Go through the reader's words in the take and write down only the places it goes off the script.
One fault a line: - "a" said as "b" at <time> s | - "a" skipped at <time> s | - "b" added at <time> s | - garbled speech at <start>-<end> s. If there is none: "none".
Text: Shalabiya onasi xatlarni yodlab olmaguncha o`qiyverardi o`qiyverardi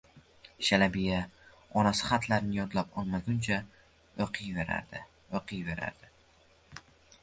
none